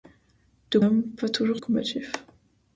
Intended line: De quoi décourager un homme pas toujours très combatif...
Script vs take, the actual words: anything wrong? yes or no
yes